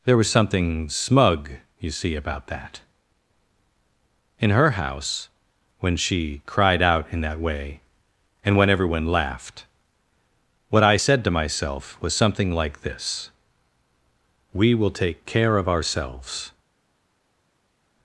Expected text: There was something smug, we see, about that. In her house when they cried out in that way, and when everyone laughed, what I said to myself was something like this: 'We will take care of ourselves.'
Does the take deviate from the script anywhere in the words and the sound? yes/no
yes